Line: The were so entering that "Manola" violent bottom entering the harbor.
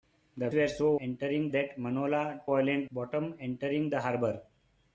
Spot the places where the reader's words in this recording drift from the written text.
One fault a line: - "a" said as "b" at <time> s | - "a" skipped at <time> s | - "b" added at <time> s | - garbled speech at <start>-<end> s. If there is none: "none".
none